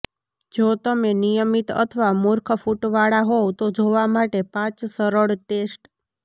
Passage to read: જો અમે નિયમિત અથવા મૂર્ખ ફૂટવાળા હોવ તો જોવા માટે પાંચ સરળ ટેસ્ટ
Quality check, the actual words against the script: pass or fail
fail